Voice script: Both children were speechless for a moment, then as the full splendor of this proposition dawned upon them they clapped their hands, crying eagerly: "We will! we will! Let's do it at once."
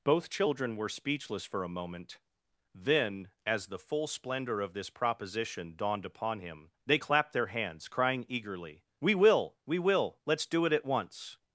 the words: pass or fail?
fail